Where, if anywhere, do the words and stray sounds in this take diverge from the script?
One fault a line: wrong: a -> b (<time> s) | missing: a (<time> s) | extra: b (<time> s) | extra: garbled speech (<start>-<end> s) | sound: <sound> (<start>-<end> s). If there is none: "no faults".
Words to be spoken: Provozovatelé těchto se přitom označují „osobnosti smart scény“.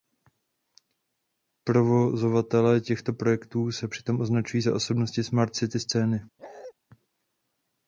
extra: projektů (3.1 s)
extra: za (4.6 s)
extra: city (5.5 s)
sound: bark (6.4-6.7 s)